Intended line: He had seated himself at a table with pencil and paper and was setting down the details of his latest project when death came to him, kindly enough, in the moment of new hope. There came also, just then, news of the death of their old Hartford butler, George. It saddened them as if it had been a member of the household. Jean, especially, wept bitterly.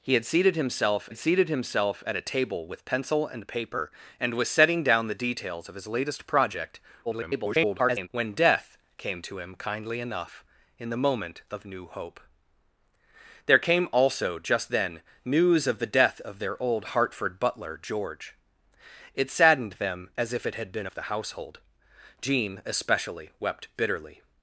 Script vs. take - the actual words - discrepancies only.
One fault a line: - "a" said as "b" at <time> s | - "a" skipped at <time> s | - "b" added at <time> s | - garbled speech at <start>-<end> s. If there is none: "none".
- "had seated himself" added at 1.1 s
- garbled speech at 7.1-8.1 s
- "a member" skipped at 20.9 s